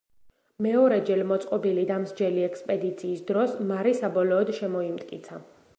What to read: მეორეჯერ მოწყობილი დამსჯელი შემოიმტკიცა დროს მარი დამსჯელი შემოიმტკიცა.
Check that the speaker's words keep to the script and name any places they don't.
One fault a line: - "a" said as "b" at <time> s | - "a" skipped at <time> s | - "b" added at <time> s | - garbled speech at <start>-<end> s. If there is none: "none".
- "შემოიმტკიცა" said as "ექსპედიციის" at 2.5 s
- "დამსჯელი" said as "საბოლოოდ" at 4.0 s